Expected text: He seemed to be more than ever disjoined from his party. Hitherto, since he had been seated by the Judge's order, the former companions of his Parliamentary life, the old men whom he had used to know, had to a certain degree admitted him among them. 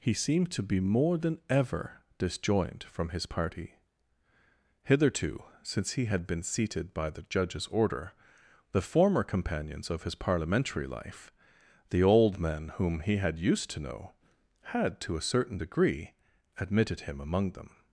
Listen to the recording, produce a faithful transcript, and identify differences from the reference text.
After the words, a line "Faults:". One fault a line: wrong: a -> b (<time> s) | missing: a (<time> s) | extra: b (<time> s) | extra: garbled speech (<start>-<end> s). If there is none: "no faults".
He seemed to be more than ever disjoined from his party. Hitherto, since he had been seated by the Judge's order, the former companions of his Parliamentary life, the old men whom he had used to know, had to a certain degree admitted him among them.
Faults:
no faults